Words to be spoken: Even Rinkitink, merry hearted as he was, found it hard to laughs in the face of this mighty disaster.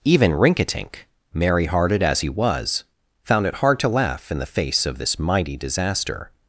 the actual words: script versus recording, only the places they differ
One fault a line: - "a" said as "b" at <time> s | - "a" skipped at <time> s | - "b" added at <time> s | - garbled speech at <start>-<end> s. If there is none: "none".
- "laughs" said as "laugh" at 3.9 s